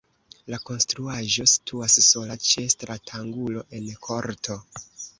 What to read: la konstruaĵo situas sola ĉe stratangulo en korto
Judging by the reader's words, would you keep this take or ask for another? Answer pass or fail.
pass